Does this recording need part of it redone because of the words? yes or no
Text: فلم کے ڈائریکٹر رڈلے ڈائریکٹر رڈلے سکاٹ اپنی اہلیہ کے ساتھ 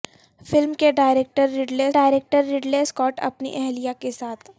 no